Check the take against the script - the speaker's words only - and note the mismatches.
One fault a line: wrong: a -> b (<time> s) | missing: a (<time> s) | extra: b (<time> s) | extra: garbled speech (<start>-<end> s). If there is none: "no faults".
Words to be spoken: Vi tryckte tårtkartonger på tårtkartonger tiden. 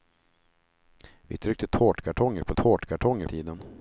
no faults